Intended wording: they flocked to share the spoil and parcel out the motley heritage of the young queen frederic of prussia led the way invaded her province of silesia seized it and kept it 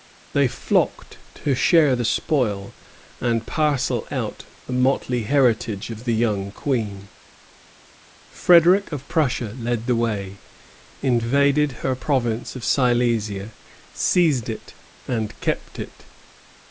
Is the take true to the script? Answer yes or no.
yes